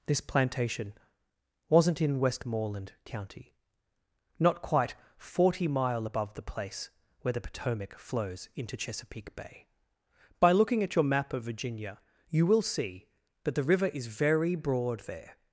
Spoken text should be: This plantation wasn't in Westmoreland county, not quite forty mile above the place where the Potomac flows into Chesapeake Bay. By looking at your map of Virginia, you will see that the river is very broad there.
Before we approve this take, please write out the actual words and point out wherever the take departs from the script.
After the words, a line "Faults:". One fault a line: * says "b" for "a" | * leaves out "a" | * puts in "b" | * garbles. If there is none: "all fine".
This plantation wasn't in Westmoreland county, not quite forty mile above the place where the Potomac flows into Chesapeake Bay. By looking at your map of Virginia, you will see that the river is very broad there.
Faults:
all fine